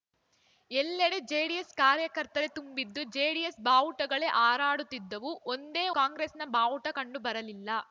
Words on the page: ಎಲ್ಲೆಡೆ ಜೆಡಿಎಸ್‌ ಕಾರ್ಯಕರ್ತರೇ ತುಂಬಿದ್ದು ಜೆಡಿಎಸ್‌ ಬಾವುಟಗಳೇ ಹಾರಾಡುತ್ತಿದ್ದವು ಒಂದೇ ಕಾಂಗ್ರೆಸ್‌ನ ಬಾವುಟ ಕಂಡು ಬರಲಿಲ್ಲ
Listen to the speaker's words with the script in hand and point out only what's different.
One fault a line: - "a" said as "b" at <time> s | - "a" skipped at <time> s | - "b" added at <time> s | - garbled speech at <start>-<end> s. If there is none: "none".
none